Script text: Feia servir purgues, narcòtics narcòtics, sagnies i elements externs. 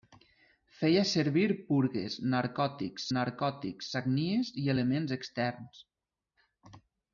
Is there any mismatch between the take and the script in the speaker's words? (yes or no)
no